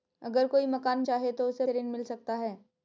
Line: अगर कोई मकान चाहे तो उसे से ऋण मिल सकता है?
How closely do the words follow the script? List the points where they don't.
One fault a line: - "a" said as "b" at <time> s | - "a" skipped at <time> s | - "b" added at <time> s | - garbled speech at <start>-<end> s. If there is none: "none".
none